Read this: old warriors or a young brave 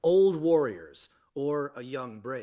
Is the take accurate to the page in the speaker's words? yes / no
yes